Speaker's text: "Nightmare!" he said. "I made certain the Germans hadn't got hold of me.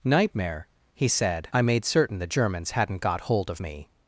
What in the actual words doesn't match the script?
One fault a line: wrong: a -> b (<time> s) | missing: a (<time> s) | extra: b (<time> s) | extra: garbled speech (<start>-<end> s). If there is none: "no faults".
no faults